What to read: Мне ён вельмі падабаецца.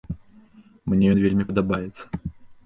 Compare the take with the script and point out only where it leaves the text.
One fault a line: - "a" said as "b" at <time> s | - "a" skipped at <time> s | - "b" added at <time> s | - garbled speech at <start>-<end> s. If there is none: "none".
none